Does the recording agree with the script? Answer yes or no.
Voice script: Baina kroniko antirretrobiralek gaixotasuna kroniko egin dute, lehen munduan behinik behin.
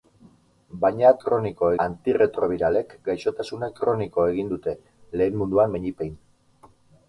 yes